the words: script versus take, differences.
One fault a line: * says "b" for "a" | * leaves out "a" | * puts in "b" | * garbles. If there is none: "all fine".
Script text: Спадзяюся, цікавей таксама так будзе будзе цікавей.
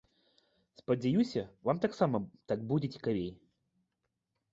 * says "вам" for "цікавей"
* leaves out "будзе"